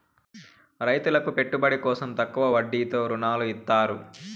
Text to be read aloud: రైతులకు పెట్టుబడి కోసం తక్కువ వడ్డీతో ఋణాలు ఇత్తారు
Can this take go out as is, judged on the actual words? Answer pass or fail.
pass